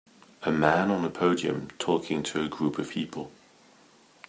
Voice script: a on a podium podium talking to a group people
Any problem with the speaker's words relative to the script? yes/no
yes